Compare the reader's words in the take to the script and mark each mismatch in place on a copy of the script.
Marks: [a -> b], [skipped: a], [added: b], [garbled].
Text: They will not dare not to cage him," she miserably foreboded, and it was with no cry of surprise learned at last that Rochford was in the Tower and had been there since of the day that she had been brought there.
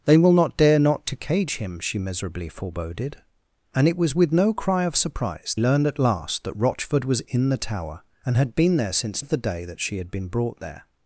They will not dare not to cage him," she miserably foreboded, and it was with no cry of surprise learned at last that Rochford was in the Tower and had been there since of the day that she had been brought there.